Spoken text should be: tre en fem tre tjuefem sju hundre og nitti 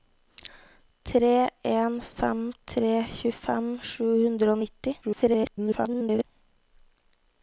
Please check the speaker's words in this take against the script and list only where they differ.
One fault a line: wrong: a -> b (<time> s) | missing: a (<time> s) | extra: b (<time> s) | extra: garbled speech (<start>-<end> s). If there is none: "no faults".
extra: garbled speech (5.0-6.2 s)